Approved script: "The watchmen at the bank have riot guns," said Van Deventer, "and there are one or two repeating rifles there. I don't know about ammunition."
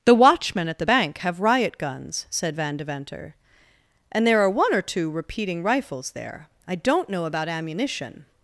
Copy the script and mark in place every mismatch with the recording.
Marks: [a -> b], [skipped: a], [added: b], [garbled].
"The watchmen at the bank have riot guns," said Van Deventer, "and there are one or two repeating rifles there. I don't know about ammunition."